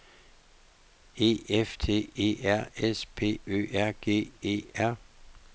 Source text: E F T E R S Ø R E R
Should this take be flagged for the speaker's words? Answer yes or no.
yes